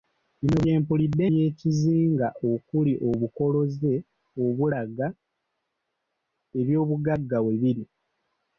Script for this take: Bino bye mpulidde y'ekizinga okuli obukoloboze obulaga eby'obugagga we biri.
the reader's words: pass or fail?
pass